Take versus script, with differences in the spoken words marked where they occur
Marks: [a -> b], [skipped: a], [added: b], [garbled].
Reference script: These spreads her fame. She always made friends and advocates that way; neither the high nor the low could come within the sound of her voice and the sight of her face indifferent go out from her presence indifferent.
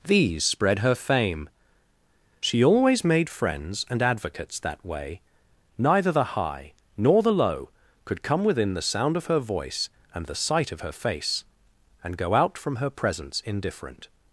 These [spreads -> spread] her fame. She always made friends and advocates that way; neither the high nor the low could come within the sound of her voice and the sight of her face [indifferent -> and] go out from her presence indifferent.